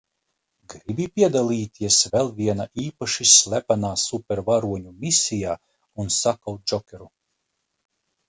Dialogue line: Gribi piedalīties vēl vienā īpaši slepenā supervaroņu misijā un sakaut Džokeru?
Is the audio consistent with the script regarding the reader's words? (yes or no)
yes